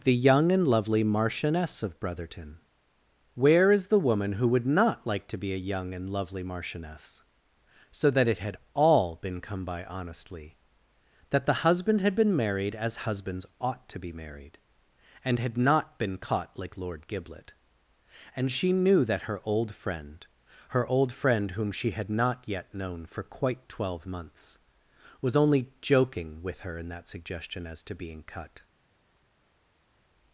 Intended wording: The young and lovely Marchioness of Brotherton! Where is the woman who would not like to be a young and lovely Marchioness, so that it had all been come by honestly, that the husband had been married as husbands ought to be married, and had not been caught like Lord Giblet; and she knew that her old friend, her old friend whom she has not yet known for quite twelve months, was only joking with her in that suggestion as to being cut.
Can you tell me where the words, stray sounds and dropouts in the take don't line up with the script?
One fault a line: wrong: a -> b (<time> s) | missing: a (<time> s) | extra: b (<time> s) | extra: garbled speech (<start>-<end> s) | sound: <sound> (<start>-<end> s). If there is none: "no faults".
wrong: has -> had (21.9 s)